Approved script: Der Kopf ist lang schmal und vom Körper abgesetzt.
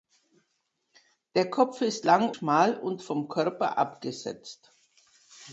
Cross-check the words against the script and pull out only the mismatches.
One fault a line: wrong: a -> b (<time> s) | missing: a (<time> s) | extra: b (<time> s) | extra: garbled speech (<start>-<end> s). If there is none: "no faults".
no faults